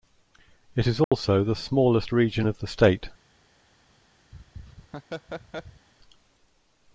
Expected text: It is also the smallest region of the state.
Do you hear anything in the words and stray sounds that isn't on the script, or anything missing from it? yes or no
yes